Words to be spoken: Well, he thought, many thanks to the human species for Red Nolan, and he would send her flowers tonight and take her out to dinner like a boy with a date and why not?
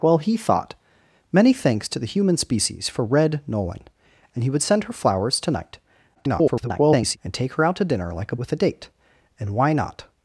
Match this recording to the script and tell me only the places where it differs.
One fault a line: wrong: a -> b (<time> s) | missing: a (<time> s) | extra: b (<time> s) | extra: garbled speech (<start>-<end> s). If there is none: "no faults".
extra: garbled speech (6.1-7.2 s)
missing: boy (8.4 s)